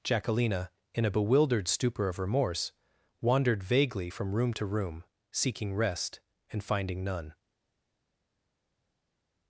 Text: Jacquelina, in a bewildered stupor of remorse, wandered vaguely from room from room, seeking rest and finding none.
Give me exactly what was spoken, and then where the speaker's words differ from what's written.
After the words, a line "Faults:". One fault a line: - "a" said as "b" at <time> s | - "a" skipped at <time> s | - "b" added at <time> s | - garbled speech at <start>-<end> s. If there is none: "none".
Jacquelina, in a bewildered stupor of remorse, wandered vaguely from room to room, seeking rest and finding none.
Faults:
- "from" said as "to" at 4.5 s